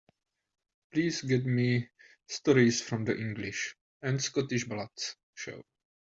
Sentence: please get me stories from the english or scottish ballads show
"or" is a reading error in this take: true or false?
true